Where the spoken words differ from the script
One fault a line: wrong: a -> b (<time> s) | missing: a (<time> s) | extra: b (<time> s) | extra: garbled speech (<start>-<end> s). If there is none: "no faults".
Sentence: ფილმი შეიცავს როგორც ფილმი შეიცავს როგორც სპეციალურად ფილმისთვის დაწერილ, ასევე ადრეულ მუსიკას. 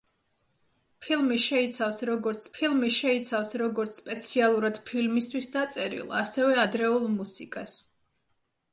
no faults